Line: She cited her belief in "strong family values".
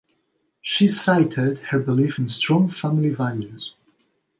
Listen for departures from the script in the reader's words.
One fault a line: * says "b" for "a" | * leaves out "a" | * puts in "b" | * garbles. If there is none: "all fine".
all fine